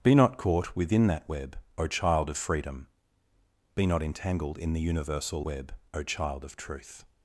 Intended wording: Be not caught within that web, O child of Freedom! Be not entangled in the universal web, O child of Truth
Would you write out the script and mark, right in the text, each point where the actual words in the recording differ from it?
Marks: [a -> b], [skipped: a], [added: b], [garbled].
Be not caught within that web, O child of Freedom! Be not entangled in the universal web, O child of Truth